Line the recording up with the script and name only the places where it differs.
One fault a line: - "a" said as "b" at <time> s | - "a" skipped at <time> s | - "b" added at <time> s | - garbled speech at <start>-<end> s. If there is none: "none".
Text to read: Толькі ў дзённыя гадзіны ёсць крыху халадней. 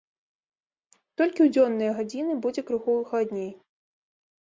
- "ёсць" said as "будзе" at 2.5 s